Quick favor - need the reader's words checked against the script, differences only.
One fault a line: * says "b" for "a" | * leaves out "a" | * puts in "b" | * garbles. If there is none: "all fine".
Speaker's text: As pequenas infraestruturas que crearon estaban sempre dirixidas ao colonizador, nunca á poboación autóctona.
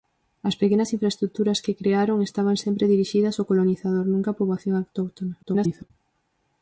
* garbles